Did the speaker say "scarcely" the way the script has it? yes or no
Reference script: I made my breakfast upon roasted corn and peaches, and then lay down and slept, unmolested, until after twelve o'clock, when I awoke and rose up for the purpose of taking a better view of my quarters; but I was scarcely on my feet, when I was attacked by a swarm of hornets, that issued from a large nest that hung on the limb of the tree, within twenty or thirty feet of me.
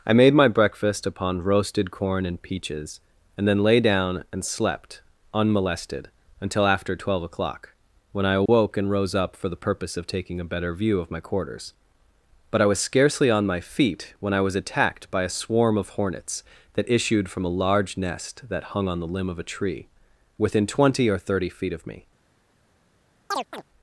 yes